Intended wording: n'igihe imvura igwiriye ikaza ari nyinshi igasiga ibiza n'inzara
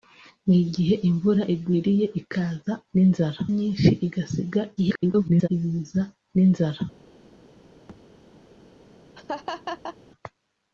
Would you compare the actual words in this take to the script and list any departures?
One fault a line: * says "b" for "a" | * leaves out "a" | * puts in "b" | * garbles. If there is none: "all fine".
* says "n'inzara" for "ari"
* garbles